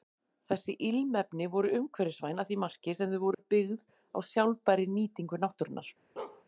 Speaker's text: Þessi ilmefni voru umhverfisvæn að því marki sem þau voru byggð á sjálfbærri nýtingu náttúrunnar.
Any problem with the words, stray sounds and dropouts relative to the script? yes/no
yes